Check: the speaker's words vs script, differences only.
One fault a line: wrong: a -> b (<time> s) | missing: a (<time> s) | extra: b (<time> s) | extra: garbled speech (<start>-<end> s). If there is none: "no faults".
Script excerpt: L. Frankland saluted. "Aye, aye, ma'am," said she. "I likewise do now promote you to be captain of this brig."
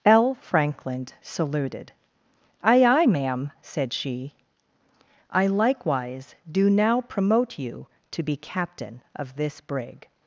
no faults